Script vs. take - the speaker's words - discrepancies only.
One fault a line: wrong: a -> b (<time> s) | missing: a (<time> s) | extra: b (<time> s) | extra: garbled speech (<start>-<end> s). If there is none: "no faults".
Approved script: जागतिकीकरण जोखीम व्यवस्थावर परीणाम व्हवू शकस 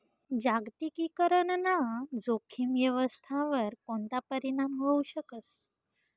extra: ना (1.6 s)
extra: कोणता (3.9 s)